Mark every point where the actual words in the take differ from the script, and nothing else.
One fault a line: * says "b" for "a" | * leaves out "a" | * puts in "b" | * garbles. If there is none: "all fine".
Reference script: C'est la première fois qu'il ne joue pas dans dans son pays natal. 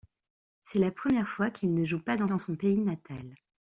all fine